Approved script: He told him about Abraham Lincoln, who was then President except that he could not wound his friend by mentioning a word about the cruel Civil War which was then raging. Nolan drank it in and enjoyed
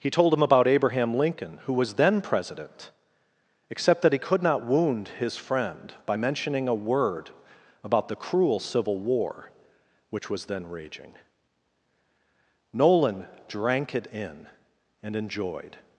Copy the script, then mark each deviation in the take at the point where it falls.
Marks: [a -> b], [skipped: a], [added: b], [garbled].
He told him about Abraham Lincoln, who was then President except that he could not wound his friend by mentioning a word about the cruel Civil War which was then raging. Nolan drank it in and enjoyed